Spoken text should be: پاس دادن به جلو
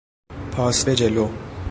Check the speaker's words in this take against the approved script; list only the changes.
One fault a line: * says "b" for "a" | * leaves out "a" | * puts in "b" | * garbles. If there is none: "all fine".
* leaves out "دادن"